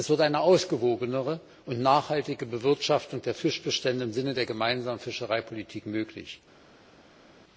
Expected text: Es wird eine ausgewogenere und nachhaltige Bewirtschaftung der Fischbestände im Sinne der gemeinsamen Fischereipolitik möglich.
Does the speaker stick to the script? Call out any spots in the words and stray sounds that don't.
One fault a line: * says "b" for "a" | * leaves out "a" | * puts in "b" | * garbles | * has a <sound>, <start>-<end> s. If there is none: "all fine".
all fine